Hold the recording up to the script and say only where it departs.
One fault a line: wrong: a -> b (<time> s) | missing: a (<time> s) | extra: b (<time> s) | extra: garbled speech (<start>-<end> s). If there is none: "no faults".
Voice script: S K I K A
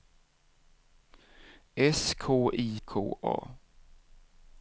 no faults